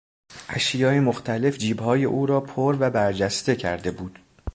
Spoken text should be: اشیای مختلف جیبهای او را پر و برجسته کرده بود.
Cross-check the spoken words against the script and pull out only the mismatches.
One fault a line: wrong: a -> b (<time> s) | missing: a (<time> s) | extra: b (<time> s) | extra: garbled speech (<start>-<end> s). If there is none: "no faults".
no faults